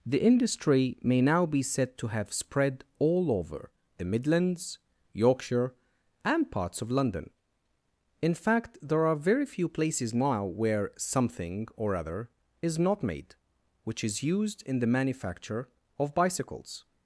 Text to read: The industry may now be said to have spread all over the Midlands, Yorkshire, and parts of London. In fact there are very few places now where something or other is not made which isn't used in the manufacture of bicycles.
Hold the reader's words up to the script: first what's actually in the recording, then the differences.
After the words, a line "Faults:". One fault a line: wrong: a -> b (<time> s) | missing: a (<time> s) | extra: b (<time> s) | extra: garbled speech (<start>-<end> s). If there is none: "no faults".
The industry may now be said to have spread all over the Midlands, Yorkshire, and parts of London. In fact there are very few places now where something or other is not made which is used in the manufacture of bicycles.
Faults:
wrong: isn't -> is (14.0 s)